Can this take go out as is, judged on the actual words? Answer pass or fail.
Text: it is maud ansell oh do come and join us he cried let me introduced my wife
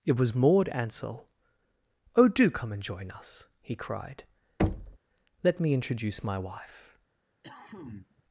fail